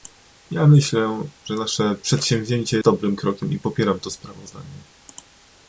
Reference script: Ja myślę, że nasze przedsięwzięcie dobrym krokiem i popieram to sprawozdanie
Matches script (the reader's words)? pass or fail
pass